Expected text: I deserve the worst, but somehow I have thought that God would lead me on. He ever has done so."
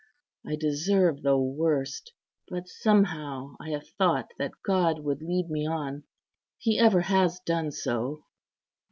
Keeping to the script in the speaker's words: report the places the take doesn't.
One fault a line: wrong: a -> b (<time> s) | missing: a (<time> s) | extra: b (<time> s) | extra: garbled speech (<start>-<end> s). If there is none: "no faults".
no faults